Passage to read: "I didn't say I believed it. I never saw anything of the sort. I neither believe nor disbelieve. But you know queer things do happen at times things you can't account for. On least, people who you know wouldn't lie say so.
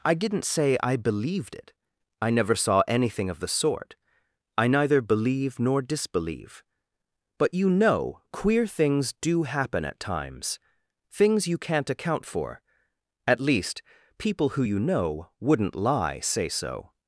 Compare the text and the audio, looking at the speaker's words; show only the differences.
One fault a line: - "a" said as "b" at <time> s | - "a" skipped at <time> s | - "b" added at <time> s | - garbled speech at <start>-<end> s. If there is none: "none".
- "On" said as "At" at 13.3 s